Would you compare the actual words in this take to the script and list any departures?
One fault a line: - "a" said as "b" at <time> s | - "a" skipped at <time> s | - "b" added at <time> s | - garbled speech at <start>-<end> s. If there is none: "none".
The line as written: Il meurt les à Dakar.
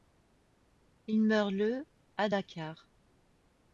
- "les" said as "le" at 1.5 s